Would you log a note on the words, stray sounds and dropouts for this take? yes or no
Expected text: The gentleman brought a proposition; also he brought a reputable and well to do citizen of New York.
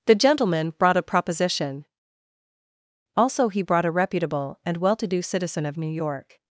no